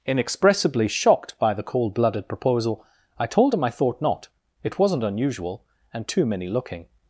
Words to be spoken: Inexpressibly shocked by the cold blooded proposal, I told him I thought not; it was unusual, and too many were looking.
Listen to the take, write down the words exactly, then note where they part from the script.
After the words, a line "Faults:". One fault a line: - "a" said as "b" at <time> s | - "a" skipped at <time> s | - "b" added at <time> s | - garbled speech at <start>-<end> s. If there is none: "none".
Inexpressibly shocked by the cold blooded proposal, I told him I thought not; it wasn't unusual, and too many looking.
Faults:
- "was" said as "wasn't" at 4.8 s
- "were" skipped at 6.5 s